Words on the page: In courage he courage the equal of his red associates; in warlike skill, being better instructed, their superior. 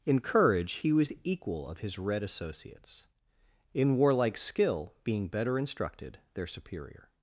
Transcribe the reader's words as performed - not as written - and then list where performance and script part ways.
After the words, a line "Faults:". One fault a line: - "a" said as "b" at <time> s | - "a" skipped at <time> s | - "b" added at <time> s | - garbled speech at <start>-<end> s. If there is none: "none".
In courage he was the equal of his red associates; in warlike skill, being better instructed, their superior.
Faults:
- "courage" said as "was" at 0.9 s